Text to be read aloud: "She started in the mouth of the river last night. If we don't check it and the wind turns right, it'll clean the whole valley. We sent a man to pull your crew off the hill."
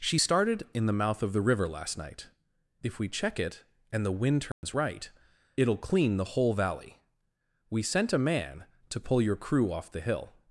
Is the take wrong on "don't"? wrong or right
wrong